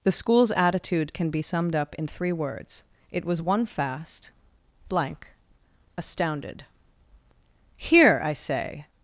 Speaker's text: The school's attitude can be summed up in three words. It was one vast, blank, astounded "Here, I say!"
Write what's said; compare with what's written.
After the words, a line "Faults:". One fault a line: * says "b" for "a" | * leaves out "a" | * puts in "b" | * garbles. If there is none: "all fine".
The school's attitude can be summed up in three words. It was one fast, blank, astounded "Here, I say!"
Faults:
* says "fast" for "vast"